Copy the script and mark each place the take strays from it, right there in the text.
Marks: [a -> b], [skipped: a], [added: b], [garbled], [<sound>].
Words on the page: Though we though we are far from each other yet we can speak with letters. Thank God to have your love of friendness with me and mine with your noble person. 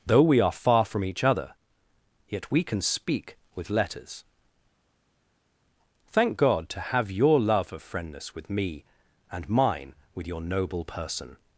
Though we [skipped: though we] are far from each other yet we can speak with letters. Thank God to have your love of friendness with me and mine with your noble person.